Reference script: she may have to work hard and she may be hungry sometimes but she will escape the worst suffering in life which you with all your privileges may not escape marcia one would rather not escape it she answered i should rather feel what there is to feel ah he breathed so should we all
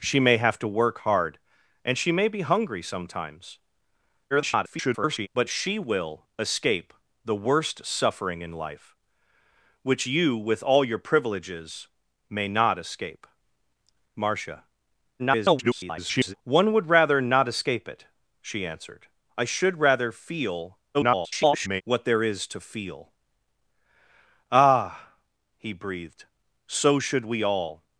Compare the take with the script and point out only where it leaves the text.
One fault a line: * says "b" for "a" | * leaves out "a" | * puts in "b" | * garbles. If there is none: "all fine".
* garbles
* garbles
* garbles